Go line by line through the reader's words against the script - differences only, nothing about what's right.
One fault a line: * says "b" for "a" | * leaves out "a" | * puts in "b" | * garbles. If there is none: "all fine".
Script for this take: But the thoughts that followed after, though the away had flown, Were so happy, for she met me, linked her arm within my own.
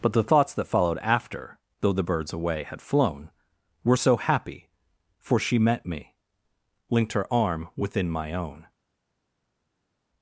* puts in "birds"